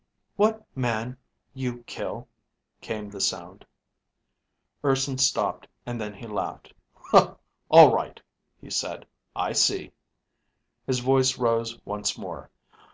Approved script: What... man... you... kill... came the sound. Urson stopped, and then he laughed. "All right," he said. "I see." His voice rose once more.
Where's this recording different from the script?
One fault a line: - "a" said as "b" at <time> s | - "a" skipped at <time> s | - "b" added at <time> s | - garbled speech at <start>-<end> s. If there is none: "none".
none